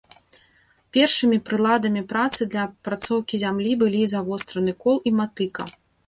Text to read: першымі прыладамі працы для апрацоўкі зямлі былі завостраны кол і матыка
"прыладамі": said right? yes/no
yes